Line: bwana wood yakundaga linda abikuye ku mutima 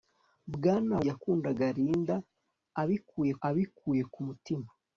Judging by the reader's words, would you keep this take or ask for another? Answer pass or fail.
fail